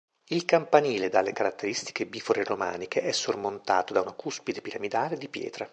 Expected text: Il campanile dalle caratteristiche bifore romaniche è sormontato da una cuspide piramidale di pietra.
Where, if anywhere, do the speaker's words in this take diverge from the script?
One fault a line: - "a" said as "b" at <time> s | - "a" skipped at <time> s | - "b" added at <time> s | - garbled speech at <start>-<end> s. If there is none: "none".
none